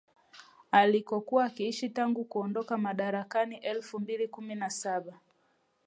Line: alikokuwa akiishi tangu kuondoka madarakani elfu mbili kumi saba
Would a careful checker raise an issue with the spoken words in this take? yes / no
yes